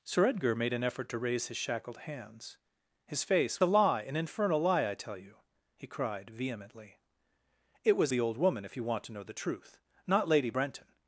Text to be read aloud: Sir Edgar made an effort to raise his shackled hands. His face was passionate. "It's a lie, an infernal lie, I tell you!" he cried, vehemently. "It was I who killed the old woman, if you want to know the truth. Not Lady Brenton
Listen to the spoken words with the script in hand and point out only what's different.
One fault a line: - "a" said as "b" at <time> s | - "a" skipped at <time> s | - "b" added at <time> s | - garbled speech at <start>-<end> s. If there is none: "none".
- "was passionate It's" skipped at 3.6 s
- "I who killed" skipped at 8.1 s